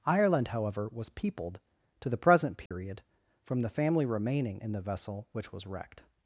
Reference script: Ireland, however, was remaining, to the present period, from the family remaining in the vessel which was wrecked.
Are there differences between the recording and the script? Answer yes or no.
yes